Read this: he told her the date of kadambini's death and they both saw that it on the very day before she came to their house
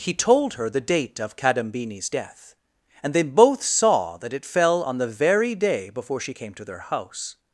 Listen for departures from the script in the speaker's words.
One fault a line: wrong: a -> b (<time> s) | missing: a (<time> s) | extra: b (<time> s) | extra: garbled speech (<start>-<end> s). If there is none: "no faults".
extra: fell (4.4 s)